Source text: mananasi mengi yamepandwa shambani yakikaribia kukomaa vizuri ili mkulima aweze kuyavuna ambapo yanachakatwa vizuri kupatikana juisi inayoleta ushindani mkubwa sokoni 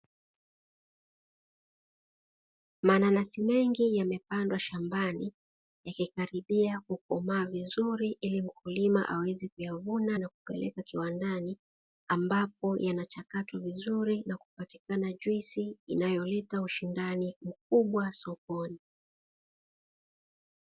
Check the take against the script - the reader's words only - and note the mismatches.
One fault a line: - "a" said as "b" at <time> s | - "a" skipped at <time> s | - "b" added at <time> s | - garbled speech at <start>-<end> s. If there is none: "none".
- "na kupeleka kiwandani" added at 10.2 s
- "na" added at 14.2 s